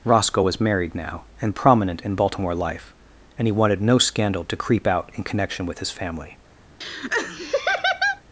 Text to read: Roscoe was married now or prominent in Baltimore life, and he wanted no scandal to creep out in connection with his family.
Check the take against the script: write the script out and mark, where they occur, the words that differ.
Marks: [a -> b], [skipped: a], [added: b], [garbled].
Roscoe was married now [or -> and] prominent in Baltimore life, and he wanted no scandal to creep out in connection with his family.